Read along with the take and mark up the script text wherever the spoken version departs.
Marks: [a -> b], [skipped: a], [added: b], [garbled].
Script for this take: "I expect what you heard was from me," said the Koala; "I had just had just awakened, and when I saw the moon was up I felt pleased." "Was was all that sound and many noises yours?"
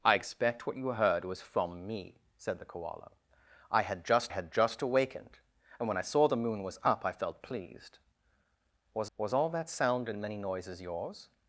"I expect what you heard was from me," said the Koala; "I had just had just awakened, and when I saw the moon was up I felt pleased." "Was was all that sound and many noises yours?"